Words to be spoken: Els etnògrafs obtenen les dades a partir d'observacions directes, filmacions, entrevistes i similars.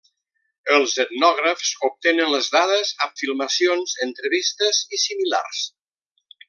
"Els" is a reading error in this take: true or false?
false